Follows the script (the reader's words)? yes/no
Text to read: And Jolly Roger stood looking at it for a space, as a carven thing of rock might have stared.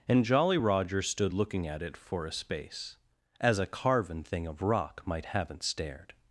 no